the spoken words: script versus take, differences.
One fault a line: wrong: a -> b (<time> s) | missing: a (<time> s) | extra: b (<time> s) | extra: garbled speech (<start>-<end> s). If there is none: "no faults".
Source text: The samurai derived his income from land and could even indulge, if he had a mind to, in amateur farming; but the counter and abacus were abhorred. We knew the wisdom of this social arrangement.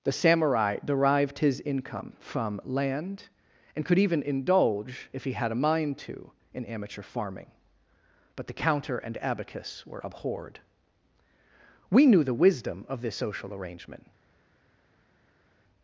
no faults